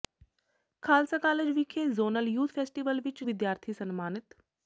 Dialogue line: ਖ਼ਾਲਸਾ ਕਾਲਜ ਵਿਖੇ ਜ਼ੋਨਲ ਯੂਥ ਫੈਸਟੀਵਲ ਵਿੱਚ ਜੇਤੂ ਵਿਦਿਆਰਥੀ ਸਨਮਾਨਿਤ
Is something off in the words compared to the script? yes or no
yes